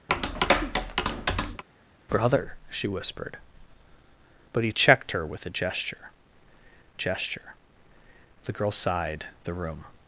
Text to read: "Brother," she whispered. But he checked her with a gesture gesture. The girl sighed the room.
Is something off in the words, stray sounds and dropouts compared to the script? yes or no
yes